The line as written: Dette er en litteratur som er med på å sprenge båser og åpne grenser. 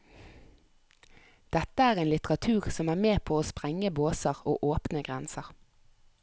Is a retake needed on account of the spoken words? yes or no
no